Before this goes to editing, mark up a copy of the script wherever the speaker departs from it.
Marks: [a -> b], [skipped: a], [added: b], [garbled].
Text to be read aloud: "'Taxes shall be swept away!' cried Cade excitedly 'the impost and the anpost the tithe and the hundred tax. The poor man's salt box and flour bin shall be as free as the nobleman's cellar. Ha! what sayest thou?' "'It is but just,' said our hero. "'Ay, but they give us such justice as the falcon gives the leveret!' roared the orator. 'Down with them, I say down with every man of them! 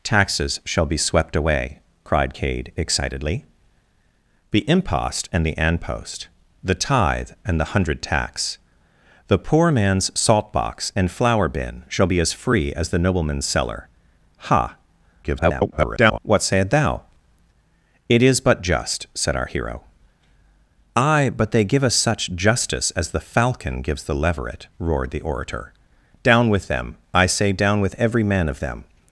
"'Taxes shall be swept away!' cried Cade excitedly 'the impost and the anpost the tithe and the hundred tax. The poor man's salt box and flour bin shall be as free as the nobleman's cellar. Ha! [garbled] what sayest thou?' "'It is but just,' said our hero. "'Ay, but they give us such justice as the falcon gives the leveret!' roared the orator. 'Down with them, I say down with every man of them!